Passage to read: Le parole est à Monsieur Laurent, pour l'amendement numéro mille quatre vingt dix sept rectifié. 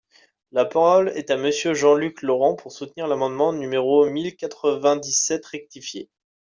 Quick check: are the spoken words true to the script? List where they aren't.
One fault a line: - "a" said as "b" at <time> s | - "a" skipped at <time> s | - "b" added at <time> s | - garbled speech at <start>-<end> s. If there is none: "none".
- "Le" said as "La" at 0.5 s
- "Jean Luc" added at 1.8 s
- "soutenir" added at 2.7 s